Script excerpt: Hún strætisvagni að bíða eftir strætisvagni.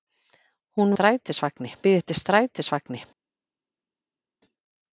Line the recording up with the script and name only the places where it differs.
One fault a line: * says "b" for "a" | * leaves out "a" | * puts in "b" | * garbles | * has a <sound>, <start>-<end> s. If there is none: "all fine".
all fine